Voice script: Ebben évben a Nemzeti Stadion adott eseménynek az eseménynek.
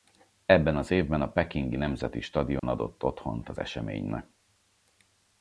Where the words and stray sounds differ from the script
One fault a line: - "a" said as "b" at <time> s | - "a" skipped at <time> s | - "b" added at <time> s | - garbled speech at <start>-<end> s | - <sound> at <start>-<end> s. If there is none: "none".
- "az" added at 0.8 s
- "Pekingi" added at 1.3 s
- dropout at 2.6-2.6 s
- "eseménynek" said as "otthont" at 3.0 s